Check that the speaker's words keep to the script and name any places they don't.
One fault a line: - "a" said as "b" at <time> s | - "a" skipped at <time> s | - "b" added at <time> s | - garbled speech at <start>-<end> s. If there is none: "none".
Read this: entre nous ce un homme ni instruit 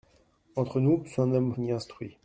none